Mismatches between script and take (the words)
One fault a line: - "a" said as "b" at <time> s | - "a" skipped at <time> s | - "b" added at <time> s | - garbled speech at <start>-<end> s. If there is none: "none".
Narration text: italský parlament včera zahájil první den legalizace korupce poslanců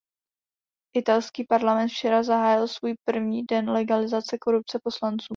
- "svůj" added at 2.7 s